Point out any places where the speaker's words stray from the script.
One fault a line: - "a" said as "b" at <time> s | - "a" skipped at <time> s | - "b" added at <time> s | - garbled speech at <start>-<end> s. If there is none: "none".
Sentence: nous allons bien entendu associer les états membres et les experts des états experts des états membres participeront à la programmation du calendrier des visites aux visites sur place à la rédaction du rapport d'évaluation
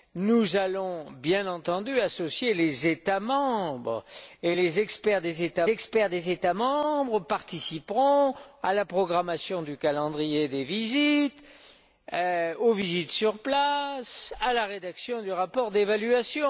none